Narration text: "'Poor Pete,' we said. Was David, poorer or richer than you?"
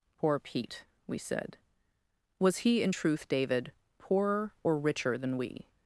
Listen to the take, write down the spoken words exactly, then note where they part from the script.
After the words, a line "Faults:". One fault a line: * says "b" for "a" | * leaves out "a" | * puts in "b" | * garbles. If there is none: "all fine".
"'Poor Pete,' we said. Was he in truth, David, poorer or richer than we?"
Faults:
* puts in "he in truth"
* says "we" for "you"